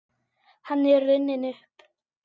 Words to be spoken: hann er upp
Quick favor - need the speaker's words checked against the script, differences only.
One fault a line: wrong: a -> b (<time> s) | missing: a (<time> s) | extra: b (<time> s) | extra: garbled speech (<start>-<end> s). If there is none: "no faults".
extra: runninn (1.1 s)